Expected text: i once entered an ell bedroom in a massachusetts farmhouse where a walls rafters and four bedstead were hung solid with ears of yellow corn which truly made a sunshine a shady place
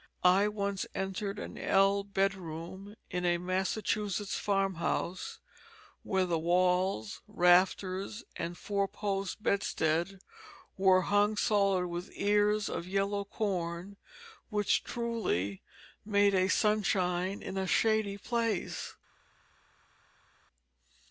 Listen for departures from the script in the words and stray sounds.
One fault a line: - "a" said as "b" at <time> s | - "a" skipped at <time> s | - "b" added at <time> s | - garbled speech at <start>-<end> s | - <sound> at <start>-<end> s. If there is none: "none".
- "a" said as "the" at 6.2 s
- "post" added at 8.9 s
- "in" added at 17.4 s